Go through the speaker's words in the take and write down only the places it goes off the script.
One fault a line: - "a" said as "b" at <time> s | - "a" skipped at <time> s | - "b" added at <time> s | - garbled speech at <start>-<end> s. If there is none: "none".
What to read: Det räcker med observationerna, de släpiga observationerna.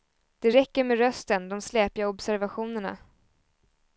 - "observationerna" said as "rösten" at 1.0 s